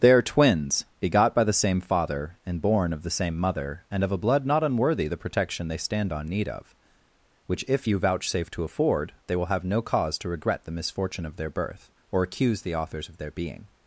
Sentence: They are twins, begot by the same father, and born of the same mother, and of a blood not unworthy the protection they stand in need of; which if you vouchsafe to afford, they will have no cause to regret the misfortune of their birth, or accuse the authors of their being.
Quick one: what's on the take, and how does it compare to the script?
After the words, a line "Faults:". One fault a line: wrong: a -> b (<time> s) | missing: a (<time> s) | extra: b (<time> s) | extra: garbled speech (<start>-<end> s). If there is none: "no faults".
They are twins, begot by the same father, and born of the same mother, and of a blood not unworthy the protection they stand on need of; which if you vouchsafe to afford, they will have no cause to regret the misfortune of their birth, or accuse the authors of their being.
Faults:
wrong: in -> on (6.1 s)